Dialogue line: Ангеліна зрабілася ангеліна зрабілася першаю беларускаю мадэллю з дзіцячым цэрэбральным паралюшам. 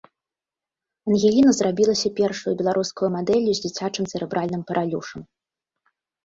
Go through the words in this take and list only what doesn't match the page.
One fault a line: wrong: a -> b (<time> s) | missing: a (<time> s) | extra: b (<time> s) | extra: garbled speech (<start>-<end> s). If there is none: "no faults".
missing: ангеліна зрабілася (2.1 s)